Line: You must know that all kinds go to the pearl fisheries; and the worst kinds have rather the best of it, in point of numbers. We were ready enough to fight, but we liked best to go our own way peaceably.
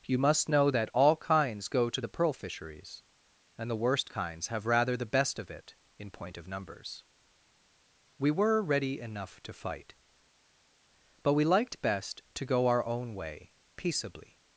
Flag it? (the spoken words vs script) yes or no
no